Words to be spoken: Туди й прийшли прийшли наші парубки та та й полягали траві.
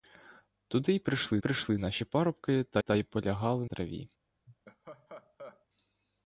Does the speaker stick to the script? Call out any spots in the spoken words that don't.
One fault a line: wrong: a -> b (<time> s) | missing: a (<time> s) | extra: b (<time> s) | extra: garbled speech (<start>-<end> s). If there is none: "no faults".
no faults